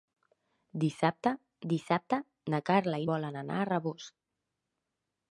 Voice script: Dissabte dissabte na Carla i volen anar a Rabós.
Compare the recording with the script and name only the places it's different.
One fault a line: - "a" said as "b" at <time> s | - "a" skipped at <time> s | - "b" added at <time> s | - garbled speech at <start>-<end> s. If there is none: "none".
none